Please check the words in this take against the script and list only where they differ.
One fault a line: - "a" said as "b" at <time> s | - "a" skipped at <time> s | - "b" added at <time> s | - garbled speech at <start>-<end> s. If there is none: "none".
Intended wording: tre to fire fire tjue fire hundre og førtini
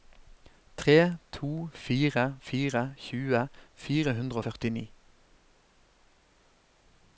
none